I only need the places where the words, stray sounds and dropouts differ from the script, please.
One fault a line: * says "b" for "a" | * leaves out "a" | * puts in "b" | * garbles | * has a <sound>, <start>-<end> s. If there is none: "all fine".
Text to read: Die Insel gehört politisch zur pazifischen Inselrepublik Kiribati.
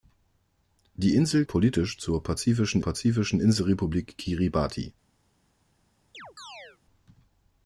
* leaves out "gehört"
* puts in "pazifischen"
* has a chirp, 6.1-6.8 s